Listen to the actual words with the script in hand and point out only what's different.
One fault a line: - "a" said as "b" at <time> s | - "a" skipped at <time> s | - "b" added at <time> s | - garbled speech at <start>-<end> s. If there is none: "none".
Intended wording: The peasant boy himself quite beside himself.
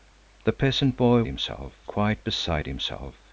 none